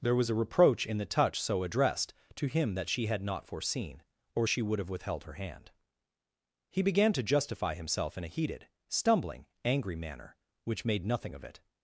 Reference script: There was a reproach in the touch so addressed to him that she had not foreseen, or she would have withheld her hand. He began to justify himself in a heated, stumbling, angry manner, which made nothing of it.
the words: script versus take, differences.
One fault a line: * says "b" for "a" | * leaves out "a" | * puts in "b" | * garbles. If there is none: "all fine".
all fine